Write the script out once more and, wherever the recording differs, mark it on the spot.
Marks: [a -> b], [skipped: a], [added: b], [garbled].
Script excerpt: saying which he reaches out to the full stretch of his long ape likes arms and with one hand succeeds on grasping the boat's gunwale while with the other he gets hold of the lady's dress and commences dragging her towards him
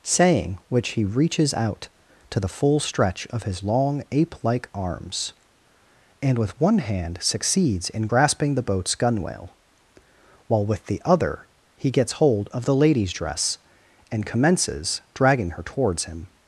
saying which he reaches out to the full stretch of his long ape [likes -> like] arms and with one hand succeeds [on -> in] grasping the boat's gunwale while with the other he gets hold of the lady's dress and commences dragging her towards him